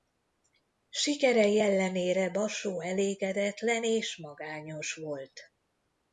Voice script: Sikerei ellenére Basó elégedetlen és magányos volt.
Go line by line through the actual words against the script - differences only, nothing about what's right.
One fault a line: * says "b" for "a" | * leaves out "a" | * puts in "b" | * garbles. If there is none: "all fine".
all fine